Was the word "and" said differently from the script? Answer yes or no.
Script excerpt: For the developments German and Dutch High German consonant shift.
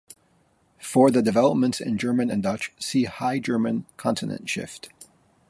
no